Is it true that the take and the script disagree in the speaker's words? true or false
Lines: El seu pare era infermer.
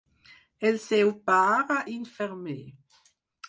true